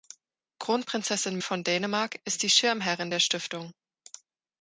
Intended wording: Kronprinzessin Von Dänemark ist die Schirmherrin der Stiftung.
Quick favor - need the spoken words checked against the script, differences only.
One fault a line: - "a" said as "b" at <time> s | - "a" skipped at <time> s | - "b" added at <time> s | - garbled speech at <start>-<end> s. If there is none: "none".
none